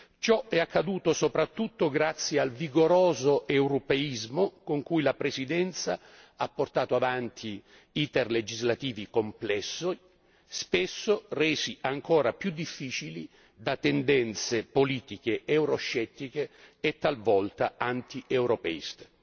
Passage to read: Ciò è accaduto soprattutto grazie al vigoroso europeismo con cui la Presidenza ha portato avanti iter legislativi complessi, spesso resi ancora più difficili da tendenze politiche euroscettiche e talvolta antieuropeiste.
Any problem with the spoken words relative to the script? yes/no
no